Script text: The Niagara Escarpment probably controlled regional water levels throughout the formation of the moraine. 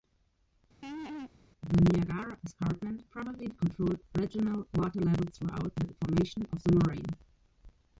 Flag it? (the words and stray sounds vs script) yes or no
yes